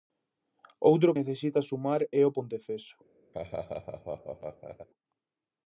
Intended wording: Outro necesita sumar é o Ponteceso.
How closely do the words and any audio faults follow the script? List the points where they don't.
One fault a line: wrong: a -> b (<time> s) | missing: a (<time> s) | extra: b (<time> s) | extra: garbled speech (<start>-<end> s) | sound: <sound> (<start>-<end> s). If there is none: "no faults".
sound: laugh (3.3-4.9 s)